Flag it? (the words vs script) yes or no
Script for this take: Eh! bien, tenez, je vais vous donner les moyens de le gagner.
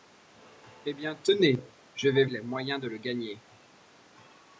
yes